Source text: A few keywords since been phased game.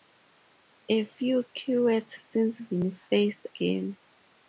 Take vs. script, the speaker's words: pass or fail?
pass